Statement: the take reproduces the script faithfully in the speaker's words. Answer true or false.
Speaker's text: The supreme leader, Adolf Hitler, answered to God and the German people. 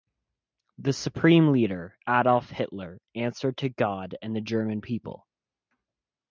true